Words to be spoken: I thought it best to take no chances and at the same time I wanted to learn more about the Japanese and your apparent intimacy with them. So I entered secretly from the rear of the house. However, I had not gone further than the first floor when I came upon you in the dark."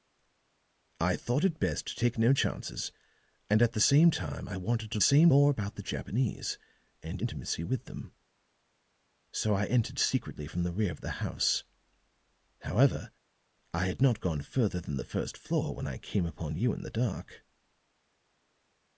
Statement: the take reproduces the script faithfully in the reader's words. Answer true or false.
false